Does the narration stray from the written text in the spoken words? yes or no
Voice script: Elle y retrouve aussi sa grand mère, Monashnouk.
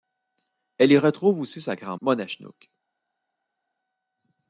yes